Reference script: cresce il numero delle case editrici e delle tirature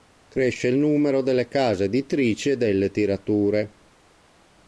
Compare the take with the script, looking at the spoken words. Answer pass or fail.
pass